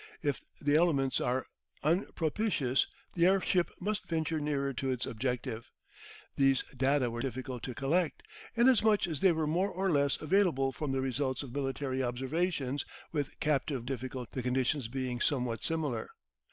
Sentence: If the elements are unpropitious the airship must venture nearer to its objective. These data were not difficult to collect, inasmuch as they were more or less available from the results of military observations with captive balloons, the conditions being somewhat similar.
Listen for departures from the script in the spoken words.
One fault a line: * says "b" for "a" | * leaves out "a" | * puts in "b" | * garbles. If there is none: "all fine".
* leaves out "not"
* says "difficult" for "balloons"